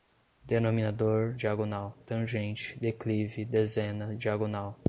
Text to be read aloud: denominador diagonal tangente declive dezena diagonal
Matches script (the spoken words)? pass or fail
pass